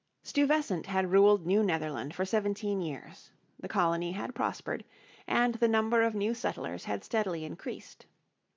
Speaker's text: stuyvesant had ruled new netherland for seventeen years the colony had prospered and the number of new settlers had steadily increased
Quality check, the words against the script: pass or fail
pass